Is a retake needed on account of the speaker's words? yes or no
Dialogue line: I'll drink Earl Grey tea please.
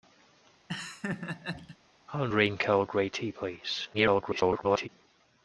yes